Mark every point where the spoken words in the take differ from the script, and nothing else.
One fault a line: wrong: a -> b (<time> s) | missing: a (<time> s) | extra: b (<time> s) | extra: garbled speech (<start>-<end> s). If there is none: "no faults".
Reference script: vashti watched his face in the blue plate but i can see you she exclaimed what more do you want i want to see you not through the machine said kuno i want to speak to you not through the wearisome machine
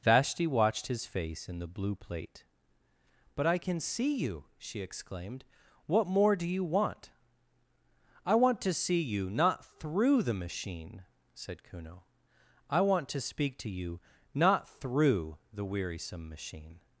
no faults